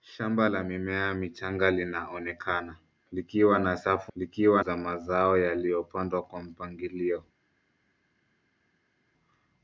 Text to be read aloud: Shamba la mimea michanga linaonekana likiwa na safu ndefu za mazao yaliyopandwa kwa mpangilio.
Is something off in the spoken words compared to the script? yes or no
yes